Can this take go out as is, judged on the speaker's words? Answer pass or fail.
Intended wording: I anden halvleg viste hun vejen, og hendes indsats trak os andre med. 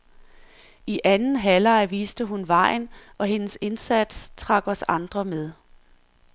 pass